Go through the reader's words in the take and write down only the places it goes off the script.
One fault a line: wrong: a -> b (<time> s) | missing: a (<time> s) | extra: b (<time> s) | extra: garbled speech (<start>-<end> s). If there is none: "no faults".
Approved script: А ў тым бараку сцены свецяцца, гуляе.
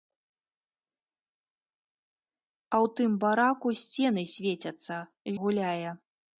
no faults